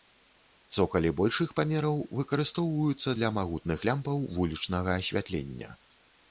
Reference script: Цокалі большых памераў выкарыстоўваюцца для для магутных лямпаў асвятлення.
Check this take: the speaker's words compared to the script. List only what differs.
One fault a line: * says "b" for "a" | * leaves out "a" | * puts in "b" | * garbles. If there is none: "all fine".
* leaves out "для"
* puts in "вулічнага"